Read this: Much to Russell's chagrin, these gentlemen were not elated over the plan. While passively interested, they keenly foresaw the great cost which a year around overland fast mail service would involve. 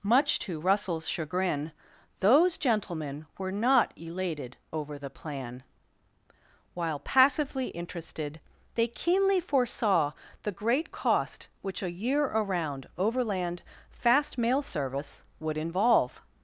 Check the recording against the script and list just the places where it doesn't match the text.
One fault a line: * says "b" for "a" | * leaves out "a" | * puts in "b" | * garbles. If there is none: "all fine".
* says "those" for "these"